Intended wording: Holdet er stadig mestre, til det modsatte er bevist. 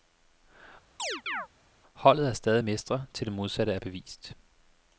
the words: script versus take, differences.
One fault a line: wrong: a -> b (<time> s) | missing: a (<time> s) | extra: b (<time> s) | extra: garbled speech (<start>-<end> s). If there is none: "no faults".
no faults